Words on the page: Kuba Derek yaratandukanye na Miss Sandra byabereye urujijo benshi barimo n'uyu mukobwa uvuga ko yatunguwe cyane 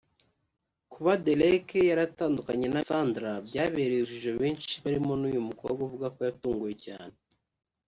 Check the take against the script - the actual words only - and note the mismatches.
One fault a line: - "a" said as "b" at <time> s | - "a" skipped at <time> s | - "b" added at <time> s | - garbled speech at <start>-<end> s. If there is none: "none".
- "Miss" skipped at 2.8 s